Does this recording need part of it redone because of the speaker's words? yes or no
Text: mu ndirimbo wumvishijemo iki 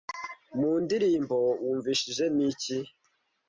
no